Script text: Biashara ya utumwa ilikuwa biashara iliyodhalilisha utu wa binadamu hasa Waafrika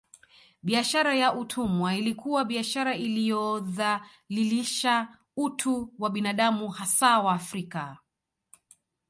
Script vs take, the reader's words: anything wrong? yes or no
no